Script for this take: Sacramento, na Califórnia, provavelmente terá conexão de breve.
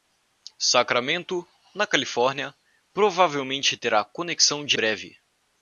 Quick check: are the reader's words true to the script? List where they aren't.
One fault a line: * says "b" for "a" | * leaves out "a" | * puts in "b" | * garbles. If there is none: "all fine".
all fine